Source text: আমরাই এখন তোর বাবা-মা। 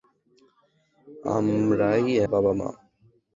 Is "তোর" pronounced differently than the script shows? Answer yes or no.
yes